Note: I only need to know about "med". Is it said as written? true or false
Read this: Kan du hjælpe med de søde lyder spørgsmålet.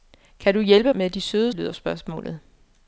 true